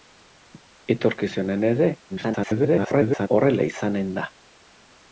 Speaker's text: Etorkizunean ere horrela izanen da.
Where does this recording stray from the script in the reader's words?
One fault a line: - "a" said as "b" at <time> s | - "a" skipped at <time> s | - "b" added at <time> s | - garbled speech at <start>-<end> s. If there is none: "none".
- garbled speech at 2.1-3.3 s